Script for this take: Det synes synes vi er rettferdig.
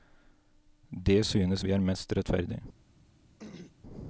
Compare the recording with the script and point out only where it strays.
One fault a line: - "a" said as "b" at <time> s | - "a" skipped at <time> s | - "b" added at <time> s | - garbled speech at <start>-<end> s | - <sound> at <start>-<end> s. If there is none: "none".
- "synes" skipped at 1.6 s
- "mest" added at 1.8 s
- throat clearing at 3.4-3.8 s